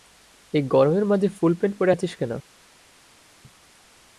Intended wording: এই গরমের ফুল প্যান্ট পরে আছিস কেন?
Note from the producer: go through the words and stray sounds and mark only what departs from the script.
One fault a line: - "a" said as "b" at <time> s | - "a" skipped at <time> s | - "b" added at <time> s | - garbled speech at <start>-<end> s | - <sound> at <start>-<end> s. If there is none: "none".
- "মাঝে" added at 1.1 s